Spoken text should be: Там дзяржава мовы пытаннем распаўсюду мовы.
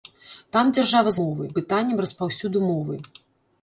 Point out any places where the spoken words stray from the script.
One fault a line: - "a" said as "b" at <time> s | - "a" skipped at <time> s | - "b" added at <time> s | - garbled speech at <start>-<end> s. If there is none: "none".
none